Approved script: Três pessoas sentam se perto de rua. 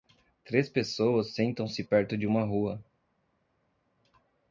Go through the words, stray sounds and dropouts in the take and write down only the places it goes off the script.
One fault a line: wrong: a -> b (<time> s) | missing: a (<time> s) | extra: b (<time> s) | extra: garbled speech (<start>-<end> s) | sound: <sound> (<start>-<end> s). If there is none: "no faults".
extra: uma (2.2 s)